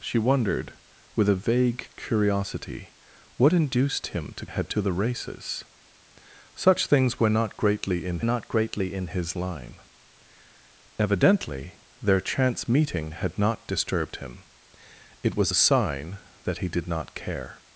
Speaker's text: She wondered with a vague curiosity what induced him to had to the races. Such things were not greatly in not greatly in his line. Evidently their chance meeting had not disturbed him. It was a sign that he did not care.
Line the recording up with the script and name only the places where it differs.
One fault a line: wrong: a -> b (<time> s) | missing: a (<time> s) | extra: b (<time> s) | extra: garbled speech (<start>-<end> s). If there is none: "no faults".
no faults